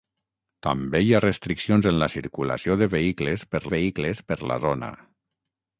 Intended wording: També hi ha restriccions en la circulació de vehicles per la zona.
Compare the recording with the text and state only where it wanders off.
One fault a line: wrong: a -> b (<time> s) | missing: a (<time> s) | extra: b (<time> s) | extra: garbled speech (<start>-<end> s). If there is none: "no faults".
extra: vehicles per (3.7 s)